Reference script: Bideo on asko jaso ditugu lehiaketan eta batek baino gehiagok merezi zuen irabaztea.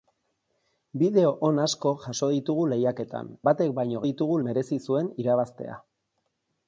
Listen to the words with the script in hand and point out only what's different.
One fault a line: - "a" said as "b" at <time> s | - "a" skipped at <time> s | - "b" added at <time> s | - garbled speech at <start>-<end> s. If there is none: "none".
- "eta" skipped at 3.3 s
- "gehiagok" said as "ditugu" at 4.1 s